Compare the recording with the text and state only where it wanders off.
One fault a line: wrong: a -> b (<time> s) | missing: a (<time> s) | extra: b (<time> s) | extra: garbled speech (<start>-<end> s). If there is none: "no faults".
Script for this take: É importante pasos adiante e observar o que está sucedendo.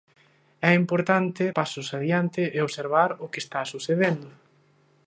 no faults